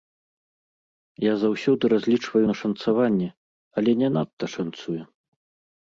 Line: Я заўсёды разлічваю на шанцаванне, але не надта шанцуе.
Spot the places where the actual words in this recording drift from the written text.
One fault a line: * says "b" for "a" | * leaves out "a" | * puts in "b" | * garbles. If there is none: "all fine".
all fine